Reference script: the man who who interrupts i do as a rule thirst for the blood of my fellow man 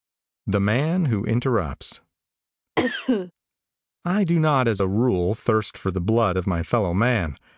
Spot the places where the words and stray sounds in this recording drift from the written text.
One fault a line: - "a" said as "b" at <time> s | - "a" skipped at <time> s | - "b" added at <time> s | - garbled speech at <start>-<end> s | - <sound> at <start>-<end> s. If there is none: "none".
- "who" skipped at 1.2 s
- cough at 2.8-3.3 s
- "not" added at 4.4 s